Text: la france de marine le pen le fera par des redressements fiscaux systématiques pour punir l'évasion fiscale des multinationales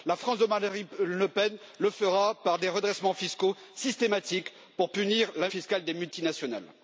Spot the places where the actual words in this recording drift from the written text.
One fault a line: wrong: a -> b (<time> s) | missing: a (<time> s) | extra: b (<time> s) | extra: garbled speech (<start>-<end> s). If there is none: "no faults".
missing: l'évasion (5.3 s)